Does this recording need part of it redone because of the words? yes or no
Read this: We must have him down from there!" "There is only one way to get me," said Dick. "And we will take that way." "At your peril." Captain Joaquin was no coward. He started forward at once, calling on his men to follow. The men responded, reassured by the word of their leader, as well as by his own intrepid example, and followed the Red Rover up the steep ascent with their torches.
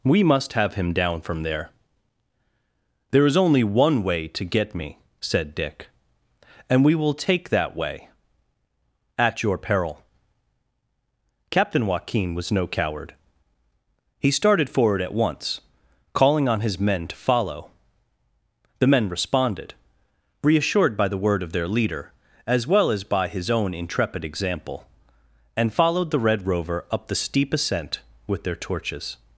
no